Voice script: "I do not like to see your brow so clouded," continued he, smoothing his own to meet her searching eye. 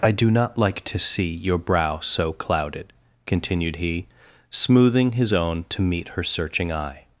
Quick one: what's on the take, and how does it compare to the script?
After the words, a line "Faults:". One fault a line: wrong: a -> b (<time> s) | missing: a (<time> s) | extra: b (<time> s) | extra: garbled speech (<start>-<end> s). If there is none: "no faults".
"I do not like to see your brow so clouded," continued he, smoothing his own to meet her searching eye.
Faults:
no faults